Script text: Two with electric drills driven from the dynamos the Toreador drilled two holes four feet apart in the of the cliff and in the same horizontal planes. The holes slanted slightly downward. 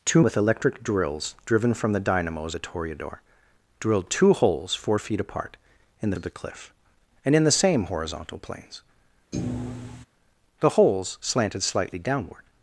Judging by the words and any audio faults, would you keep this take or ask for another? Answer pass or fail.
fail